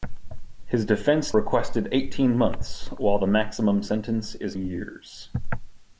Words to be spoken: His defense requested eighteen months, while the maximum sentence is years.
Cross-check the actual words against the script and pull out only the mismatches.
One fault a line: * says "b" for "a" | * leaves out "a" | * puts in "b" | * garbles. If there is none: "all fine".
all fine